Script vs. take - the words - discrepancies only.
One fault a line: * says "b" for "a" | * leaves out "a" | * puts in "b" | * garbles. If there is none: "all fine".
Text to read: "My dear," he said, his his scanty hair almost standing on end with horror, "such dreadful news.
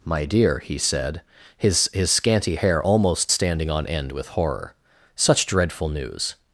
all fine